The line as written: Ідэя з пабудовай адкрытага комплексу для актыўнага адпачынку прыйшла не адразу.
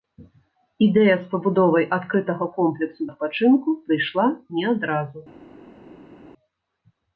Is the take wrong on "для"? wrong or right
wrong